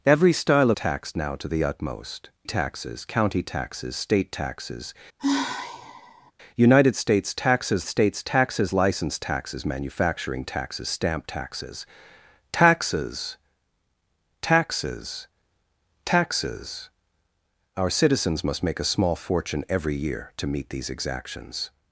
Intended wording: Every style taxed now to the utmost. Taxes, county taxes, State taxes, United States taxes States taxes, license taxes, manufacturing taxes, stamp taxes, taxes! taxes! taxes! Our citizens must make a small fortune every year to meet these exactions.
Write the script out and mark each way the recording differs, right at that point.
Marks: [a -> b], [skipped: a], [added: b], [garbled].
Every style taxed now to the utmost. Taxes, county taxes, State taxes, United States taxes States taxes, license taxes, manufacturing taxes, stamp taxes, taxes! taxes! taxes! Our citizens must make a small fortune every year to meet these exactions.